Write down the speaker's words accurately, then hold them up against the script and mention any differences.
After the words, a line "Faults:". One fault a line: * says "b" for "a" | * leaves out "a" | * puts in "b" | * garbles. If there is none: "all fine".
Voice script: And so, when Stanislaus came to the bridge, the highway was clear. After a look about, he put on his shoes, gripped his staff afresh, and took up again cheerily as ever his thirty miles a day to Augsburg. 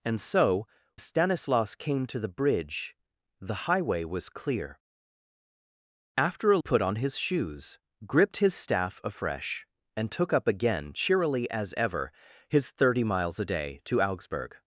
And so, Stanislaus came to the bridge, the highway was clear. After a put on his shoes, gripped his staff afresh, and took up again cheerily as ever his thirty miles a day to Augsburg.
Faults:
* leaves out "when"
* leaves out "look about he"